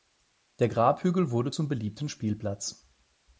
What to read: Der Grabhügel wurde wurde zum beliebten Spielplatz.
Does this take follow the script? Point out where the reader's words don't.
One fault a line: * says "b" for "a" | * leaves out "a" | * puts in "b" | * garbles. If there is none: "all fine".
* leaves out "wurde"